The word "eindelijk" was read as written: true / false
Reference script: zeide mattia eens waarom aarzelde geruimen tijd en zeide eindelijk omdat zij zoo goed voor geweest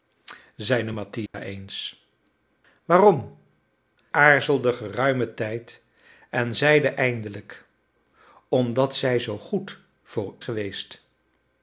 true